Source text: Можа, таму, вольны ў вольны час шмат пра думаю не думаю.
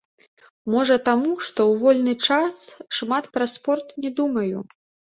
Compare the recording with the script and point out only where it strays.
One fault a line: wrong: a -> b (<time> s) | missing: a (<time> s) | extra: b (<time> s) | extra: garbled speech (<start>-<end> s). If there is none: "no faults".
wrong: вольны -> што (1.5 s)
wrong: думаю -> спорт (3.6 s)